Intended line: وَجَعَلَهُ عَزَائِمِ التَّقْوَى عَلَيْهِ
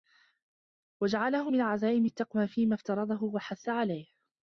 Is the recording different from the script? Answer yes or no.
yes